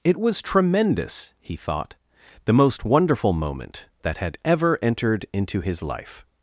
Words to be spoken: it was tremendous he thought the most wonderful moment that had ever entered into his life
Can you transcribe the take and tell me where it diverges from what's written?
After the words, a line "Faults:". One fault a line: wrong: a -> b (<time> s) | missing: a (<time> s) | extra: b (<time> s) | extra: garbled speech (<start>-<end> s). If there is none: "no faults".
it was tremendous he thought the most wonderful moment that had ever entered into his life
Faults:
no faults